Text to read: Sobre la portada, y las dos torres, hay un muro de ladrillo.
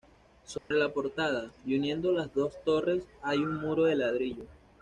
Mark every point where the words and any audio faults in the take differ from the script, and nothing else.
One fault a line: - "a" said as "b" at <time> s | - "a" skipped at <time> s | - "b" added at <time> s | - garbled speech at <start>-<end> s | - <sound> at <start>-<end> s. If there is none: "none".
- dropout at 0.6-0.7 s
- "uniendo" added at 1.8 s